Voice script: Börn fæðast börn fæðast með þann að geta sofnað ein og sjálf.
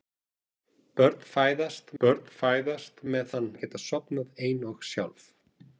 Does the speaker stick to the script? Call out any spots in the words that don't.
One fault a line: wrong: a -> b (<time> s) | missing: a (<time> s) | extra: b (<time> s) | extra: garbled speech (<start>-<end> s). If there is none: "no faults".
no faults